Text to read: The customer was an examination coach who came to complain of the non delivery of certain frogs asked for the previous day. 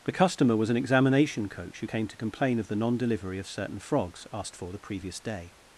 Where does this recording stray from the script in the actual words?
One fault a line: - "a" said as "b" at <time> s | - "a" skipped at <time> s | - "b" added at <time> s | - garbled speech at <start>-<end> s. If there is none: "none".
none